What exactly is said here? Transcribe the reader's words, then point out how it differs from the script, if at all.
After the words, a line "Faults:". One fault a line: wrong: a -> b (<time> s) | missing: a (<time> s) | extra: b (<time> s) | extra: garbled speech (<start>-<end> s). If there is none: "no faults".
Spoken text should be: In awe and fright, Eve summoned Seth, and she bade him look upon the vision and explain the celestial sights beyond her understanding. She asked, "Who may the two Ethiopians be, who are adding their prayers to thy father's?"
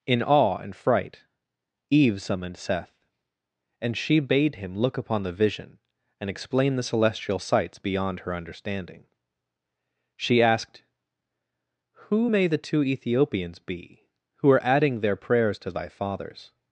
In awe and fright, Eve summoned Seth, and she bade him look upon the vision and explain the celestial sights beyond her understanding. She asked, "Who may the two Ethiopians be, who are adding their prayers to thy father's?"
Faults:
no faults